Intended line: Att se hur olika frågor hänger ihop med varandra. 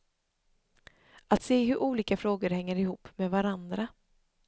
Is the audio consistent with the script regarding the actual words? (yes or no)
yes